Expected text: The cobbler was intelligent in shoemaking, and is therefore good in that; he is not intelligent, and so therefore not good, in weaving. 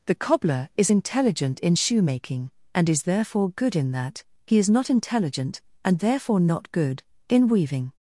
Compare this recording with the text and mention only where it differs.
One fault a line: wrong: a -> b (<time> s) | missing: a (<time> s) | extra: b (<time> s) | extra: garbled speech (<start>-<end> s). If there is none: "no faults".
wrong: was -> is (0.8 s)
missing: so (6.0 s)